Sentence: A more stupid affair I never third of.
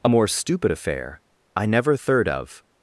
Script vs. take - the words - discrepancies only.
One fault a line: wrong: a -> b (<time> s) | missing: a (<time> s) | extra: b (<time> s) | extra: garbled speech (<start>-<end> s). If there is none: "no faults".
no faults